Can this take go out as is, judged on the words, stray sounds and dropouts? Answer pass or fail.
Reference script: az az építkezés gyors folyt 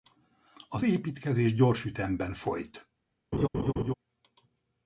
fail